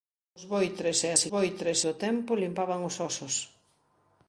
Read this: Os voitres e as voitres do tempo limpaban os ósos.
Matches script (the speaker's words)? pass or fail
pass